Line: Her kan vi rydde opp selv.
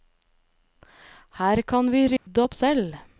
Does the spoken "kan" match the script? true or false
true